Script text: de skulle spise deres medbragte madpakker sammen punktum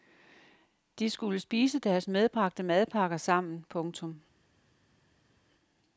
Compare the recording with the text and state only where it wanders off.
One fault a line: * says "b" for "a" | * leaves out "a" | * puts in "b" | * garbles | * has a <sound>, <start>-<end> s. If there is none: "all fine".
all fine